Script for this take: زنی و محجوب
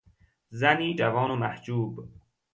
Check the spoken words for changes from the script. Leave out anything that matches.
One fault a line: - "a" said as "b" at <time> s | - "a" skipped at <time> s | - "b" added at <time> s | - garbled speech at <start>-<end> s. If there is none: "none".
- "جوان" added at 0.9 s